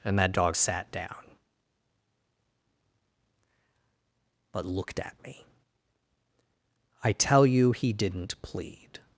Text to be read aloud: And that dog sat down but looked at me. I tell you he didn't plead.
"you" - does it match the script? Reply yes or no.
yes